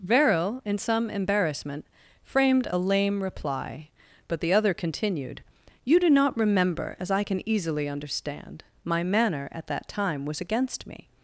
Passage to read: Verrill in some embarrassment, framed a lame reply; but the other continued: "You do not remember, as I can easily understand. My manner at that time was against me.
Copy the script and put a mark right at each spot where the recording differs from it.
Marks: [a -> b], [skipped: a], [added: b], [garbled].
Verrill in some embarrassment, framed a lame reply; but the other continued: "You do not remember, as I can easily understand. My manner at that time was against me.